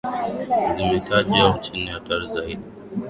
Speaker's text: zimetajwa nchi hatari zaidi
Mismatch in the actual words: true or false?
false